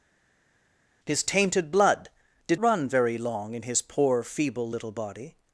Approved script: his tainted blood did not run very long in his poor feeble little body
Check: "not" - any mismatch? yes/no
yes